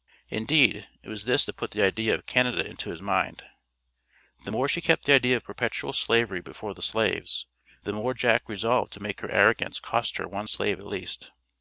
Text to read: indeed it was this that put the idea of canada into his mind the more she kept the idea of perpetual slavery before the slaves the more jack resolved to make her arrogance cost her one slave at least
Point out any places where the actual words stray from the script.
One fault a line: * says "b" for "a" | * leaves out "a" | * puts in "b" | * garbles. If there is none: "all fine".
all fine